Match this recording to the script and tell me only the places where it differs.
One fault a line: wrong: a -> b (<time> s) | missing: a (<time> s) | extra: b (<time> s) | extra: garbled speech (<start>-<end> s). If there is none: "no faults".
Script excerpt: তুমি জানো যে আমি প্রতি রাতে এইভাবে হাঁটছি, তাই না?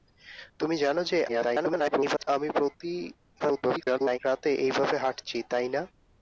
extra: garbled speech (1.3-2.3 s)
extra: garbled speech (3.4-4.2 s)